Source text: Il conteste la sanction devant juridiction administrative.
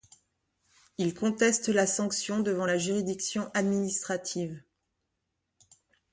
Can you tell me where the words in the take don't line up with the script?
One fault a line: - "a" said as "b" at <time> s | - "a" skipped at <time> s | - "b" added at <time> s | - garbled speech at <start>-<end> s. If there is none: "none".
- "la" added at 2.6 s